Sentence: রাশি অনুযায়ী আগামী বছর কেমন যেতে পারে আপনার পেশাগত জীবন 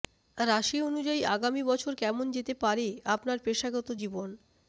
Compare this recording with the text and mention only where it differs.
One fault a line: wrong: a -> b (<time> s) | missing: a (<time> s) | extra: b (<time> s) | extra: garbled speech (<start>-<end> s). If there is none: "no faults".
no faults